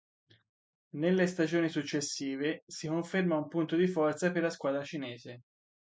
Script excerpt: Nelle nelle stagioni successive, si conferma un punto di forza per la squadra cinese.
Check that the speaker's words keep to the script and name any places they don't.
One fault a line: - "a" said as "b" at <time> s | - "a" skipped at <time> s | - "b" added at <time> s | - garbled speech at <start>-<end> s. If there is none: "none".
- "nelle" skipped at 1.3 s